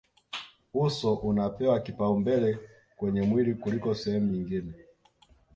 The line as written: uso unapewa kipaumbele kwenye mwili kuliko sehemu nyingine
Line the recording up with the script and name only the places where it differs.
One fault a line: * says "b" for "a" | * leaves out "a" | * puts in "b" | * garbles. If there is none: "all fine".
all fine